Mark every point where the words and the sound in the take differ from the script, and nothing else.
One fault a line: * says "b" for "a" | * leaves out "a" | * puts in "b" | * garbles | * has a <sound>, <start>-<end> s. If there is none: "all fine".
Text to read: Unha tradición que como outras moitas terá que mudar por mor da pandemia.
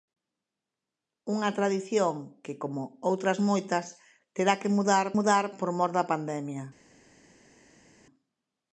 * puts in "mudar"